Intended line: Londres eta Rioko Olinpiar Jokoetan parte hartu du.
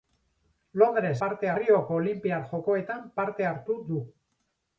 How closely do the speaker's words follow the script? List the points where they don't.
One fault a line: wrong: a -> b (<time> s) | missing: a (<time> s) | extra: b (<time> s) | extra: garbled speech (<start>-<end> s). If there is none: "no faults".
wrong: eta -> parte (1.2 s)